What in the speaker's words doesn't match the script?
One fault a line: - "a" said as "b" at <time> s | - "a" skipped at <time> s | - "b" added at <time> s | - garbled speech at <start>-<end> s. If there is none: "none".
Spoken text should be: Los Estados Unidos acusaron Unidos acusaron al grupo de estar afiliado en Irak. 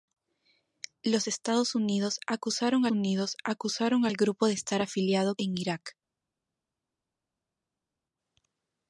none